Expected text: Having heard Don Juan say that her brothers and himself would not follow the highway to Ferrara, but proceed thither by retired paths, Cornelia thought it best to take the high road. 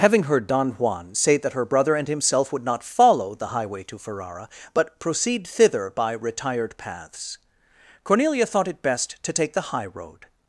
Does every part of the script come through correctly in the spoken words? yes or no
no